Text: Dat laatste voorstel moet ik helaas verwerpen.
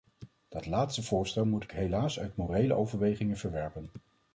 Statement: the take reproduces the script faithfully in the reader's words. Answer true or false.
false